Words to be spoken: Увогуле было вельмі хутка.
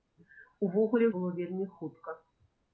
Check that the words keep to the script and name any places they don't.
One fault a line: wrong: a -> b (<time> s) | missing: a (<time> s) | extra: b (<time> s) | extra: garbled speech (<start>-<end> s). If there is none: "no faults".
no faults